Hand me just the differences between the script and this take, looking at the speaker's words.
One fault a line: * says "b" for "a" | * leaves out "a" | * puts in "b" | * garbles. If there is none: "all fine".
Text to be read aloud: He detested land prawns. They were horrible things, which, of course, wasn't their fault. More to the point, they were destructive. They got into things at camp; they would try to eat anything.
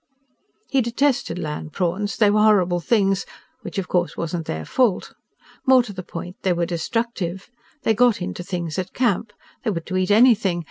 * leaves out "try"